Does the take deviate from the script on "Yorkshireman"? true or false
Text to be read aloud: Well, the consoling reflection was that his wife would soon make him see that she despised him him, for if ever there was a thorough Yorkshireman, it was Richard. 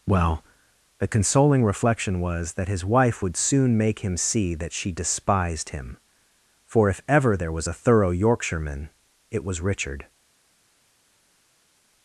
false